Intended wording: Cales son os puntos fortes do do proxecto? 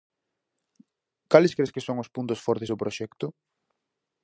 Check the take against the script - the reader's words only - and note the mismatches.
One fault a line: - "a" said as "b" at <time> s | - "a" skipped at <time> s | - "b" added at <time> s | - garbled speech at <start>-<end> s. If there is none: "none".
- "cres que" added at 1.6 s
- "do" skipped at 2.8 s